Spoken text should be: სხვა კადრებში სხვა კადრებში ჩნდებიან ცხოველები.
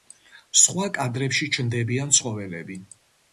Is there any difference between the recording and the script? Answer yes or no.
yes